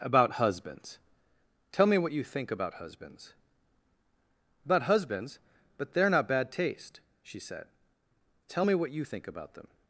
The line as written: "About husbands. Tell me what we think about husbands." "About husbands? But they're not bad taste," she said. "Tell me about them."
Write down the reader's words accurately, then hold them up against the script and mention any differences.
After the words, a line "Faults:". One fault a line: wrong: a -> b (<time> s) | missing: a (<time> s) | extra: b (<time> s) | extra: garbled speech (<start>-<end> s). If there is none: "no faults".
"About husbands. Tell me what you think about husbands." "About husbands? But they're not bad taste," she said. "Tell me what you think about them."
Faults:
wrong: we -> you (2.1 s)
extra: what you think (8.7 s)